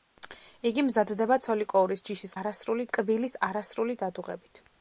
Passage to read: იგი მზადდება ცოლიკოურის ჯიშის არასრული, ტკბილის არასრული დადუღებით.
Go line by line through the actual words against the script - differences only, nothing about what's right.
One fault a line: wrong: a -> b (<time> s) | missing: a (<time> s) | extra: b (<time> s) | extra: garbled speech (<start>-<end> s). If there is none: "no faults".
no faults